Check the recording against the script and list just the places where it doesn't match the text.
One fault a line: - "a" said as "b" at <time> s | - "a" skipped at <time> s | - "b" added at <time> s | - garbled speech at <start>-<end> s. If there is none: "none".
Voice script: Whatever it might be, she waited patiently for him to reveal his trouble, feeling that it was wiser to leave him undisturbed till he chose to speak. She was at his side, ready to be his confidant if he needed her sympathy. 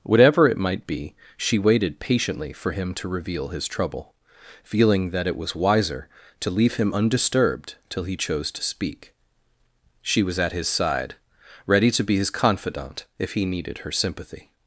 none